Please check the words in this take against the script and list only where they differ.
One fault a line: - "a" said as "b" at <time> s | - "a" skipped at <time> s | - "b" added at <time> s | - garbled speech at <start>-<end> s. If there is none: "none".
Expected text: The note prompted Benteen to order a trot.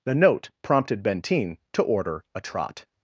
none